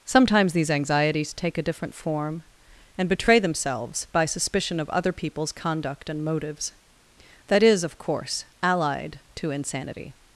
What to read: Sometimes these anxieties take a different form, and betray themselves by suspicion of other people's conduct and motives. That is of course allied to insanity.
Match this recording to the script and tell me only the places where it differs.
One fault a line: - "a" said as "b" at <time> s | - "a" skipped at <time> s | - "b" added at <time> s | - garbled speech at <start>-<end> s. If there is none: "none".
none